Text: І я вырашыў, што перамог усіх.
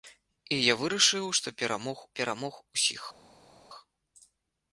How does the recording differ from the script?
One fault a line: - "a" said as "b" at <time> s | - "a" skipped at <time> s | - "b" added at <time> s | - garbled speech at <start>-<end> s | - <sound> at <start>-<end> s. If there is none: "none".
- "перамог" added at 2.2 s